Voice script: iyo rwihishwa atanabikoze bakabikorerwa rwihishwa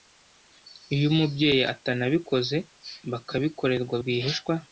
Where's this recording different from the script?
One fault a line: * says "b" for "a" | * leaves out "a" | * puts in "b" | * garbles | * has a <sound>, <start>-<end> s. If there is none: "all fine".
* says "umubyeyi" for "rwihishwa"